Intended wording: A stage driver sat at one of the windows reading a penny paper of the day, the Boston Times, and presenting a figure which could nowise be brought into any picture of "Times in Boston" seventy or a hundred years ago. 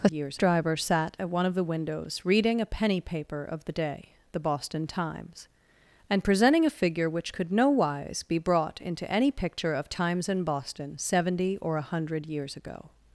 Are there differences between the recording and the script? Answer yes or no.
yes